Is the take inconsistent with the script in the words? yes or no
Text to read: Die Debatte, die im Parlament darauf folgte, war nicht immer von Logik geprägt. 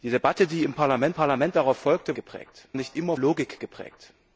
yes